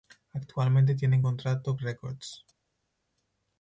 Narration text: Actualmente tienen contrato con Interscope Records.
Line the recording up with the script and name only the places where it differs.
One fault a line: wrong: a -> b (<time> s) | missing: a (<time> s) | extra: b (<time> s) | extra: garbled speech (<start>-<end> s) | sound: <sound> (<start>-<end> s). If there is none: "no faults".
missing: con Interscope (1.8 s)